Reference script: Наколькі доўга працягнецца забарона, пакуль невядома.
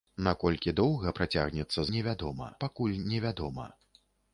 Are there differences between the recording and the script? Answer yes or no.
yes